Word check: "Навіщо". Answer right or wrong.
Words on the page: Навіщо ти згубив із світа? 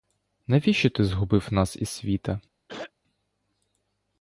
right